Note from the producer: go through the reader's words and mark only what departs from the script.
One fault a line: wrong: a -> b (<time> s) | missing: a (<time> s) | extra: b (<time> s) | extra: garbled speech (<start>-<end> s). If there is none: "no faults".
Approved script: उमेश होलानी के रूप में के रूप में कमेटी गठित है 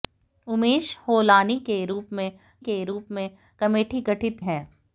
no faults